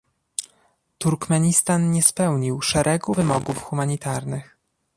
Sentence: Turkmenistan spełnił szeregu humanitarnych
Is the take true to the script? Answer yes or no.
no